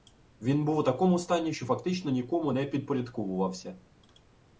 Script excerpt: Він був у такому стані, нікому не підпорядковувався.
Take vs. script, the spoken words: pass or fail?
fail